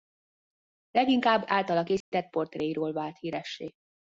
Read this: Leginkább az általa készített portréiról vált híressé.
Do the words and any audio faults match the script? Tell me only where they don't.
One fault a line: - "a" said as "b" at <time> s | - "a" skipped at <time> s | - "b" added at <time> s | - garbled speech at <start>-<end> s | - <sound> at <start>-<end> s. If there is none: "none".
- "az" skipped at 1.4 s
- dropout at 2.0-2.1 s